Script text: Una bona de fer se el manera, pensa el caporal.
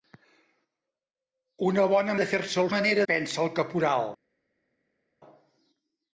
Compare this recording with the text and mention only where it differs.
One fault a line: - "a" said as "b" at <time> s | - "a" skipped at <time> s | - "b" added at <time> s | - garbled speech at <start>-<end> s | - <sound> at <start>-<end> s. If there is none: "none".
none